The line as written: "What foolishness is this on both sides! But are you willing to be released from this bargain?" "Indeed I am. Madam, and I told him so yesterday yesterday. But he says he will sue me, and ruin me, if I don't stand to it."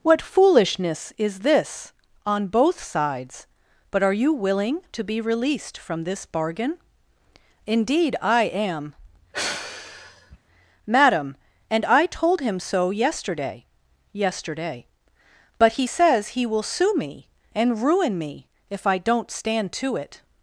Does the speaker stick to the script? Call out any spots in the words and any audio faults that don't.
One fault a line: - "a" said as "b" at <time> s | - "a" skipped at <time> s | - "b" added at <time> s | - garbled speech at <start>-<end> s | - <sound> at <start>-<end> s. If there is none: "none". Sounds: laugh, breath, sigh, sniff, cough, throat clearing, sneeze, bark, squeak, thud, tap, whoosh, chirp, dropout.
- sigh at 9.3-10.4 s